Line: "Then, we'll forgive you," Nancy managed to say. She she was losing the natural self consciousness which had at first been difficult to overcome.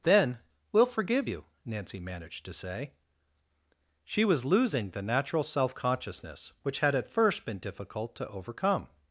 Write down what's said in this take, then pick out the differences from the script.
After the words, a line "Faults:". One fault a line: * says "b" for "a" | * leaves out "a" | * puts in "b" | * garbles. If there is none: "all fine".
"Then, we'll forgive you," Nancy managed to say. She was losing the natural self consciousness which had at first been difficult to overcome.
Faults:
* leaves out "she"